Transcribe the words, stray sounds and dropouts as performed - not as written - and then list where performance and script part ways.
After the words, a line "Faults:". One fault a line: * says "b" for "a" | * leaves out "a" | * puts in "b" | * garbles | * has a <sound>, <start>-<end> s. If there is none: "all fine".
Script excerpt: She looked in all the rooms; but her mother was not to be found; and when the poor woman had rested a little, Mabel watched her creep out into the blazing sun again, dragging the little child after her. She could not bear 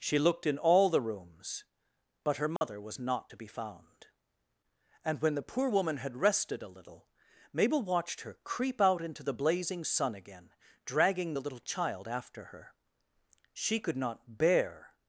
She looked in all the rooms; but her mother was not to be found; and when the poor woman had rested a little, Mabel watched her creep out into the blazing sun again, dragging the little child after her. She could not bear
Faults:
* has a dropout, 2.6-2.6 s